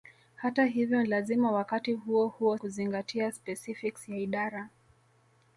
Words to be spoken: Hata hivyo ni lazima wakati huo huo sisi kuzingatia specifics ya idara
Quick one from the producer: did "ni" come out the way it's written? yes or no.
no